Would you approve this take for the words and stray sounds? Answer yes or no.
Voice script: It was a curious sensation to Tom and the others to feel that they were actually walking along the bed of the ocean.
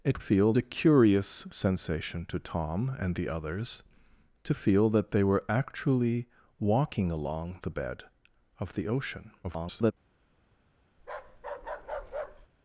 no